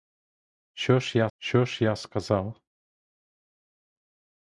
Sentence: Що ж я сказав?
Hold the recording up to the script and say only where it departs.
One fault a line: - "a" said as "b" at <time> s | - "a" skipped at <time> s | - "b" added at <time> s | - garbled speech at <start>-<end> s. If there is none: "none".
- "що ж я" added at 1.4 s